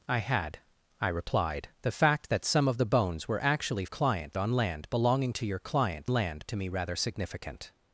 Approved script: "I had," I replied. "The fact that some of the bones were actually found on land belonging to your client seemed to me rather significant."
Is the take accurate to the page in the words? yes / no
no